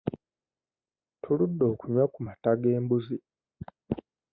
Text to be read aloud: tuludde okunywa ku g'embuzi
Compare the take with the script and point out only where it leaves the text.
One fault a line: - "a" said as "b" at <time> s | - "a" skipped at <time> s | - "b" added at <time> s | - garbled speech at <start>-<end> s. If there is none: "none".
- "mata" added at 2.3 s